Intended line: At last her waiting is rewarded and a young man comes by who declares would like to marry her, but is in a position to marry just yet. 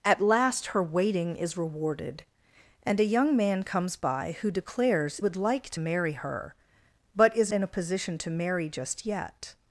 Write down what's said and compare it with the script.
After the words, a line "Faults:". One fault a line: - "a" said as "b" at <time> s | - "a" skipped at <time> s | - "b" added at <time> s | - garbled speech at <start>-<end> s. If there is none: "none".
At last her waiting is rewarded and a young man comes by who declares would like to marry her, but is in a position to marry just yet.
Faults:
none